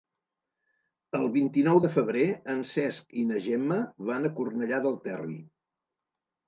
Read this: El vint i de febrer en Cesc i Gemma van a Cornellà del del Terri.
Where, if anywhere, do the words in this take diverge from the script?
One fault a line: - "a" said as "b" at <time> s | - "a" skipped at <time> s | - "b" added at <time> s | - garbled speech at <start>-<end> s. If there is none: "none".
- "nou" added at 1.7 s
- "na" added at 3.3 s
- "del" skipped at 5.0 s